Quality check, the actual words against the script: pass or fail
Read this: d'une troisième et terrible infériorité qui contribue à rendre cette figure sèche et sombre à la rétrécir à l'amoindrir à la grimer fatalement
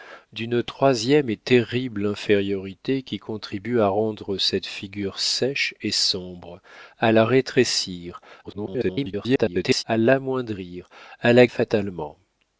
fail